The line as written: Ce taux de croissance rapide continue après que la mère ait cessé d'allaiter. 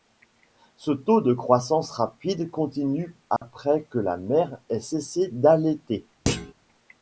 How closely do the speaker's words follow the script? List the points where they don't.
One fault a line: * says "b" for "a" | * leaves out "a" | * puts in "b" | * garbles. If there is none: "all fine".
all fine